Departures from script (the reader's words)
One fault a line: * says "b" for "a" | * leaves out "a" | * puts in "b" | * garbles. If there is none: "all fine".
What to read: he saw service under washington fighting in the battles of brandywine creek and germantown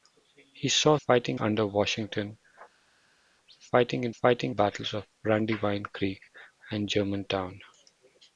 * says "fighting" for "service"
* says "fighting" for "the"